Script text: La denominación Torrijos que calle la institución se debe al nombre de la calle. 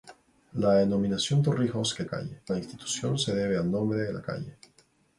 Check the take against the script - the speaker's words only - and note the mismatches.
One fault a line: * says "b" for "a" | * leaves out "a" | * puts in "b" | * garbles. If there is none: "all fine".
all fine